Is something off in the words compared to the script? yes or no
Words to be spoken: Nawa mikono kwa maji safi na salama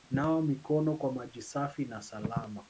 no